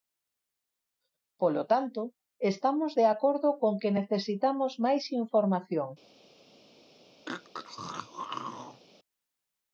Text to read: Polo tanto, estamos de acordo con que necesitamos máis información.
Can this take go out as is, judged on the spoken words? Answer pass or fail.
pass